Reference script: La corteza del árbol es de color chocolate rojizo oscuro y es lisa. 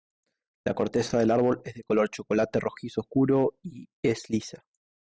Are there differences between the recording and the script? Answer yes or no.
no